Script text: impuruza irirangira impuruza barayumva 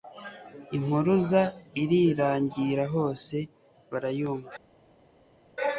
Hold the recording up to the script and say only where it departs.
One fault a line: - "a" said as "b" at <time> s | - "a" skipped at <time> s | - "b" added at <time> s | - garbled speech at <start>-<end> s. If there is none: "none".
- "impuruza" said as "hose" at 3.0 s